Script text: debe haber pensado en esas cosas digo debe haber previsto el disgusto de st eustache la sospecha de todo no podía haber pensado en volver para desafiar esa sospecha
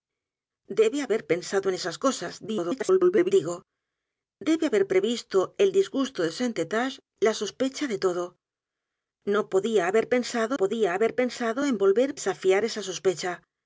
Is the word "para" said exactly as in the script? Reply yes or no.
no